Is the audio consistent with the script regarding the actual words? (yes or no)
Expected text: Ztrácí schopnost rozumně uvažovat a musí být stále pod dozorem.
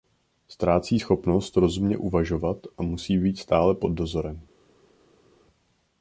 yes